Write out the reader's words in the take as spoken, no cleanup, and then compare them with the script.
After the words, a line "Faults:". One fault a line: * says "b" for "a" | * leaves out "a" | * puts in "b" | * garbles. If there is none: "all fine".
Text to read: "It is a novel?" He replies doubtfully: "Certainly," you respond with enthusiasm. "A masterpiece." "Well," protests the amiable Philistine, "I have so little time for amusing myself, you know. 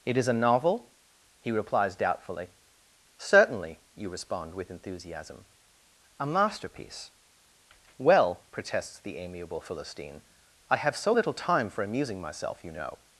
"It is a novel?" He replies doubtfully: "Certainly," you respond with enthusiasm. "A masterpiece." "Well," protests the amiable Philistine, "I have so little time for amusing myself, you know.
Faults:
all fine